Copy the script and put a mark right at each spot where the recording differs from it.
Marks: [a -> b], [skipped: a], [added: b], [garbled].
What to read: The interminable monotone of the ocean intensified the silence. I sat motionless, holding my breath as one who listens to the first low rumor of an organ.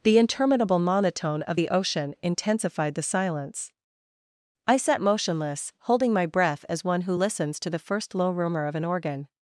The interminable monotone of the ocean intensified the silence. I sat motionless, holding my breath as one who listens to the first low rumor of an organ.